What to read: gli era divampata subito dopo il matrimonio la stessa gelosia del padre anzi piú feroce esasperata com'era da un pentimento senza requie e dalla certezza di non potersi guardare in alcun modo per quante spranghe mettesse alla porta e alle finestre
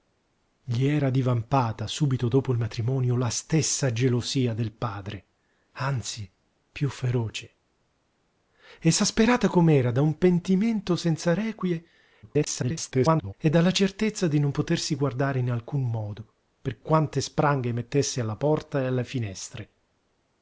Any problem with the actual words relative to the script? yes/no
yes